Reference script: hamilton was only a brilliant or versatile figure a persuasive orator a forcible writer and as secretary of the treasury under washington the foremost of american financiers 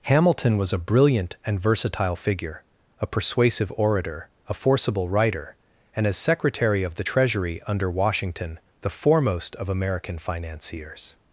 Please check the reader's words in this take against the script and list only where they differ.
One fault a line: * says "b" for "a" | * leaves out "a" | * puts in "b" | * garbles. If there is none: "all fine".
* leaves out "only"
* says "and" for "or"